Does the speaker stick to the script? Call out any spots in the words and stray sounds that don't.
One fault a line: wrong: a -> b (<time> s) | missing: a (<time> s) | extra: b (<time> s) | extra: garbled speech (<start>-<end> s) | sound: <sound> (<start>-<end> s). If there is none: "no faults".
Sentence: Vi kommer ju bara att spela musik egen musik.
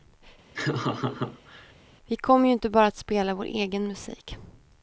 sound: laugh (0.5-1.7 s)
extra: inte (2.5 s)
wrong: musik -> vår (3.3 s)